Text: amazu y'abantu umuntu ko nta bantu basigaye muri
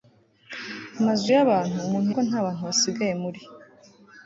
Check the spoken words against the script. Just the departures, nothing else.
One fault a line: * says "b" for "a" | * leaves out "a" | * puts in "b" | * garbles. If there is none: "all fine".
all fine